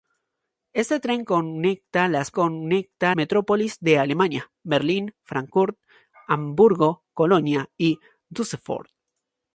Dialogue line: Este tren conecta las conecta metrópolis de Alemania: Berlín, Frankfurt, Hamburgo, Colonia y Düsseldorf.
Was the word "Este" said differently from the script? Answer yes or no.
no